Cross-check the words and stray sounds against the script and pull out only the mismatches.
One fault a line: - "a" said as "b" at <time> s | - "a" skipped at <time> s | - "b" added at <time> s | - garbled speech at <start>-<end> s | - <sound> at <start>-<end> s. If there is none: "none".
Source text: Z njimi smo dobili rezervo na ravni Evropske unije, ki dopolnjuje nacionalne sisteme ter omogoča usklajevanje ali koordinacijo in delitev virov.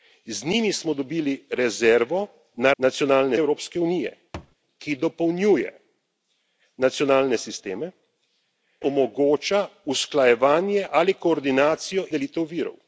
- "ravni" said as "nacionalne" at 2.8 s
- thud at 4.3-4.6 s
- "ter" skipped at 7.9 s
- "in" skipped at 12.0 s